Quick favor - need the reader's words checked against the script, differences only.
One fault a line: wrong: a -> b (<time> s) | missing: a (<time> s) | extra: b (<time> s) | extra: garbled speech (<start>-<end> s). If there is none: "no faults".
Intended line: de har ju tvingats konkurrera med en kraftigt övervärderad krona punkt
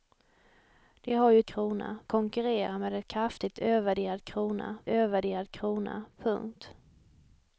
wrong: tvingats -> krona (1.5 s)
extra: övervärderad krona (4.9 s)